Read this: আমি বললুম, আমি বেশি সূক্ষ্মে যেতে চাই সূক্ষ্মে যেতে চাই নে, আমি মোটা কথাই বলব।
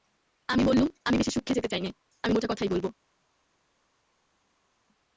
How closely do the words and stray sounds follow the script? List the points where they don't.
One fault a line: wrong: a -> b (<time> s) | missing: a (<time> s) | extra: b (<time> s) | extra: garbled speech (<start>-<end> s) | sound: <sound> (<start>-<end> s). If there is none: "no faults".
missing: সূক্ষ্মে যেতে চাই (1.8 s)